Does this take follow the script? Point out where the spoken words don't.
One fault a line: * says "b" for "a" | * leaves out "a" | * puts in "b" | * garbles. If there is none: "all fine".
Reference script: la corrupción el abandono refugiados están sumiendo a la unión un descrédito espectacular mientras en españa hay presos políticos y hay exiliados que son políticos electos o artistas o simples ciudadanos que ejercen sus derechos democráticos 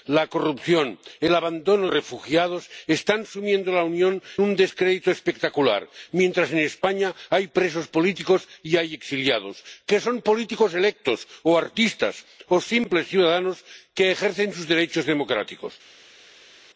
all fine